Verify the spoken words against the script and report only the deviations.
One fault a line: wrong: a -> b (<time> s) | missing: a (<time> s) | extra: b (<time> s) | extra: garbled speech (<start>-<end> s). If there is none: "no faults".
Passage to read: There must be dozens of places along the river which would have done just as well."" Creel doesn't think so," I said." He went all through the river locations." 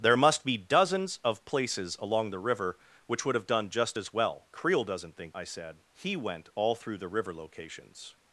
missing: so (5.3 s)